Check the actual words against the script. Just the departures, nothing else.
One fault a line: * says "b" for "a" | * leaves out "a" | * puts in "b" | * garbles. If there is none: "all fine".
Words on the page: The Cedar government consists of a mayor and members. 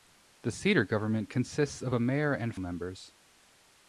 all fine